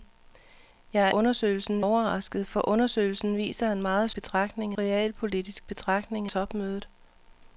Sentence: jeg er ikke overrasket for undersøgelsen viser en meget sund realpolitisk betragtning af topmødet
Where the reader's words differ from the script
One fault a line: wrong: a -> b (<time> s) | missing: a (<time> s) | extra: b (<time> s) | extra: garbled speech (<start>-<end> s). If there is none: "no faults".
wrong: ikke -> undersøgelsen (1.1 s)
wrong: sund -> betragtning (4.1 s)
missing: af (6.3 s)